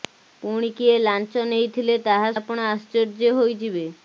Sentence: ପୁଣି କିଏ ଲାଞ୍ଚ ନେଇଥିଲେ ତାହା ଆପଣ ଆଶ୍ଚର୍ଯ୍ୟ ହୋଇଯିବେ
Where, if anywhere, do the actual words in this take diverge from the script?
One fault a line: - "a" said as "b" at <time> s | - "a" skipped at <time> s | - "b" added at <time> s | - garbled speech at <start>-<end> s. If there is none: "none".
none